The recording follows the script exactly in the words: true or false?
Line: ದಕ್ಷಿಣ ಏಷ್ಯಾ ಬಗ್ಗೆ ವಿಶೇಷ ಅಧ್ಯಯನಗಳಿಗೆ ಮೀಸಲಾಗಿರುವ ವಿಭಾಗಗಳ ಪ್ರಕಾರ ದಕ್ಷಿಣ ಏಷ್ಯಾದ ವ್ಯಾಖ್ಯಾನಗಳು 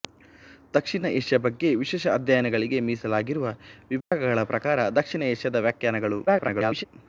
false